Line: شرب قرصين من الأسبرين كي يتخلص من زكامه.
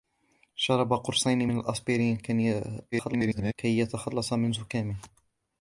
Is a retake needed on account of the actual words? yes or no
yes